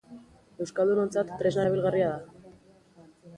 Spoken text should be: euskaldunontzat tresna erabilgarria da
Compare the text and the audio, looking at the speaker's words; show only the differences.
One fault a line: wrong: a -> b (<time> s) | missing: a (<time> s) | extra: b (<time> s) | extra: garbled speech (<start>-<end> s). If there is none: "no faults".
no faults